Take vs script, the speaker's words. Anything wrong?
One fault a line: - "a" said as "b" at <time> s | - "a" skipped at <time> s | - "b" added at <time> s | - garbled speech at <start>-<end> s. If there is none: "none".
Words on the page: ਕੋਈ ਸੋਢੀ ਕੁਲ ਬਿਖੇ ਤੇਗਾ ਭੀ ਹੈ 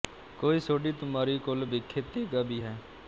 - "ਤੁਮਾਰੀ" added at 0.9 s